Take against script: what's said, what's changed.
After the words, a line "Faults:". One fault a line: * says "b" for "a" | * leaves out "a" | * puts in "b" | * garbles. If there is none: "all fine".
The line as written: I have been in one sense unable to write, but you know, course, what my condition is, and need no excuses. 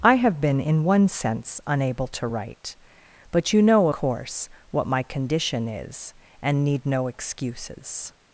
I have been in one sense unable to write, but you know, course, what my condition is, and need no excuses.
Faults:
all fine